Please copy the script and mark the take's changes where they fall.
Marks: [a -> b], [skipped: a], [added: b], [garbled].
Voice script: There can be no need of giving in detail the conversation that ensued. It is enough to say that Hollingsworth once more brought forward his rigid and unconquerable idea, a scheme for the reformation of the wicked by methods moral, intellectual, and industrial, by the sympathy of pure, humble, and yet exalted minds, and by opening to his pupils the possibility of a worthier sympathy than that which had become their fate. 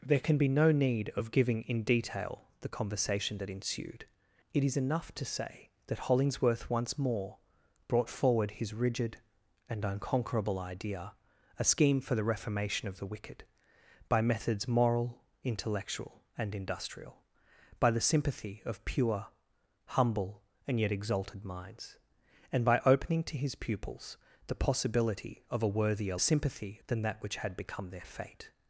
There can be no need of giving in detail the conversation that ensued. It is enough to say that Hollingsworth once more brought forward his rigid and unconquerable idea, a scheme for the reformation of the wicked by methods moral, intellectual, and industrial, by the sympathy of pure, humble, and yet exalted minds, and by opening to his pupils the possibility of a worthier sympathy than that which had become their fate.